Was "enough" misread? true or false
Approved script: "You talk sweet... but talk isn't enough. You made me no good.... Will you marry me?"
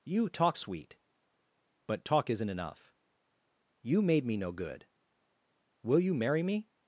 false